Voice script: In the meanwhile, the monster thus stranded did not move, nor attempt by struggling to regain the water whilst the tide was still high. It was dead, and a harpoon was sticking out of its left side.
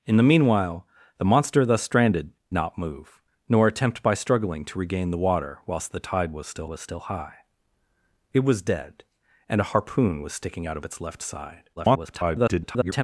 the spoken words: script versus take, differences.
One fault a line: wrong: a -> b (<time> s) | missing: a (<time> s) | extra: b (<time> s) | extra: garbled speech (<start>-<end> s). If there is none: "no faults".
missing: did (2.3 s)
extra: was still (6.7 s)
extra: garbled speech (11.8-13.0 s)